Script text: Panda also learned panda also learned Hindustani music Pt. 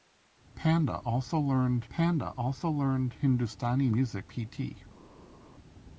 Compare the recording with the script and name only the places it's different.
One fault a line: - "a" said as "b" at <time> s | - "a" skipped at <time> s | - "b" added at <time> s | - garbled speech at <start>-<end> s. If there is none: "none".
none